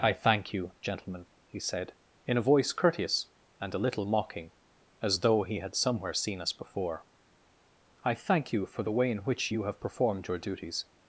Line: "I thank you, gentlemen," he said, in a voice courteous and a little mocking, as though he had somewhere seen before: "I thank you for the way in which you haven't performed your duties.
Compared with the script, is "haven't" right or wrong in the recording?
wrong